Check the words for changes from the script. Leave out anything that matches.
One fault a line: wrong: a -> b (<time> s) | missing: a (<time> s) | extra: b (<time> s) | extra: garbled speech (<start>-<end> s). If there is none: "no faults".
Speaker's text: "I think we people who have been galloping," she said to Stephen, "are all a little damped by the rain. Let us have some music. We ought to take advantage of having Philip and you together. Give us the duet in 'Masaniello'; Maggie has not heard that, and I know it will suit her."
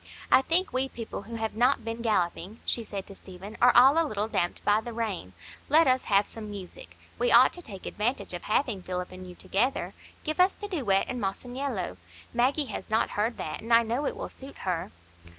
extra: not (1.6 s)